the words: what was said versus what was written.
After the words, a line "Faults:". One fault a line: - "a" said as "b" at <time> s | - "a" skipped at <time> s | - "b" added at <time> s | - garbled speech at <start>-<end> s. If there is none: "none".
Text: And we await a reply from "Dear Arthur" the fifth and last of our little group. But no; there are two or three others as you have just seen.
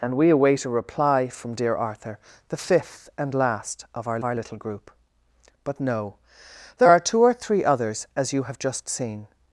And we await a reply from "Dear Arthur" the fifth and last of our our little group. But no; there are two or three others as you have just seen.
Faults:
- "our" added at 4.2 s